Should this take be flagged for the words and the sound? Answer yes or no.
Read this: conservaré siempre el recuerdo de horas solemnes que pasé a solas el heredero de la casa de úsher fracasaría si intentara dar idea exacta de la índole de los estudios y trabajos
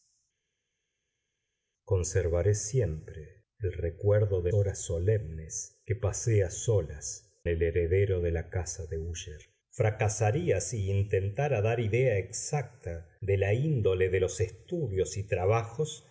no